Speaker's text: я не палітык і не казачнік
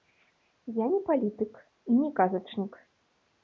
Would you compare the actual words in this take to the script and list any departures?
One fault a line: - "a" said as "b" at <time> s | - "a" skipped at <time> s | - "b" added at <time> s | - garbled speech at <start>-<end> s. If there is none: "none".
none